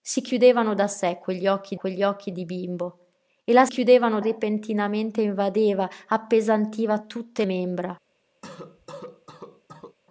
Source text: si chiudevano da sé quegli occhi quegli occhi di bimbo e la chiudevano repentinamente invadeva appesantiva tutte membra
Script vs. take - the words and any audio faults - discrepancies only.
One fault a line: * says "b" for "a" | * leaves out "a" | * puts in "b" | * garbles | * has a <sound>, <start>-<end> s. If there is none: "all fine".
* has a cough, 8.4-10.0 s